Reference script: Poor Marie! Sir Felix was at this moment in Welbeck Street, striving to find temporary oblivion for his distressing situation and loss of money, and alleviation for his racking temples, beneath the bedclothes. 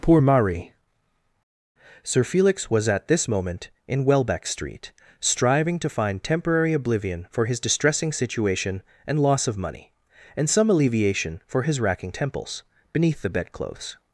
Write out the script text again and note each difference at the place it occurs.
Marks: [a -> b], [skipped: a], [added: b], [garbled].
Poor Marie! Sir Felix was at this moment in Welbeck Street, striving to find temporary oblivion for his distressing situation and loss of money, and [added: some] alleviation for his racking temples, beneath the bedclothes.